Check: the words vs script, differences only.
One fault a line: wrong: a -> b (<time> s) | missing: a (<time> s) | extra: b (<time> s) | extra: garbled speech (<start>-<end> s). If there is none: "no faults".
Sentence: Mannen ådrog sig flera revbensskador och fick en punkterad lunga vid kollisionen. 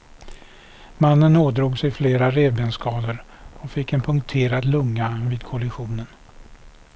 no faults